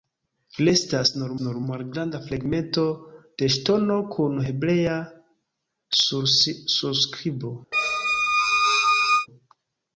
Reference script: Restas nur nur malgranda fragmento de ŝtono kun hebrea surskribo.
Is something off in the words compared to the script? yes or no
no